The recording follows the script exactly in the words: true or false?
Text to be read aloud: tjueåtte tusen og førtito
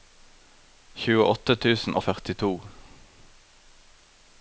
true